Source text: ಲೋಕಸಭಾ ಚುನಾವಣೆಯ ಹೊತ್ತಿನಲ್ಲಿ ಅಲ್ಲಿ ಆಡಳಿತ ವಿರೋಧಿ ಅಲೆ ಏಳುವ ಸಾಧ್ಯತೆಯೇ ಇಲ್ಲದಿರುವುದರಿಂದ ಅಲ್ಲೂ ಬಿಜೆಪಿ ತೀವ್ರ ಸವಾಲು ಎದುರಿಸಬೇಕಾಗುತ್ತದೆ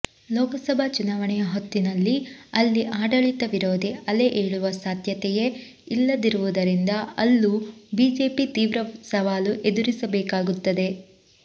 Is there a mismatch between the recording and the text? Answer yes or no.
no